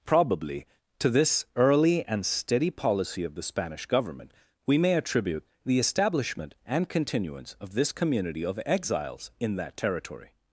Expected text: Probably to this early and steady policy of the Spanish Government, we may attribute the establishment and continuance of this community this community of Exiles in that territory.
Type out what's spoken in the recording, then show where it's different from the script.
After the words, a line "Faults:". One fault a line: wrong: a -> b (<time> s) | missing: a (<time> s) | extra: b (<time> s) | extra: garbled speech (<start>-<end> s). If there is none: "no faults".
Probably to this early and steady policy of the Spanish Government, we may attribute the establishment and continuance of this community of Exiles in that territory.
Faults:
missing: this community (8.4 s)